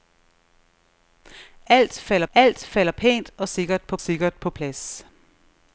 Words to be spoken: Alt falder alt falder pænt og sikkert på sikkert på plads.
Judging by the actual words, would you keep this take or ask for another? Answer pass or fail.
pass